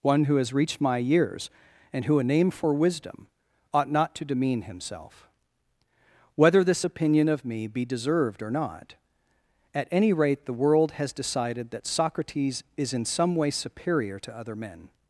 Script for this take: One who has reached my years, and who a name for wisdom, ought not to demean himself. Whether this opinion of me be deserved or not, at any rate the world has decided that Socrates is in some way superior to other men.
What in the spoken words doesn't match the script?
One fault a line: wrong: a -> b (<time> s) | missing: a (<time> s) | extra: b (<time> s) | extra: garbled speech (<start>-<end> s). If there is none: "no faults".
no faults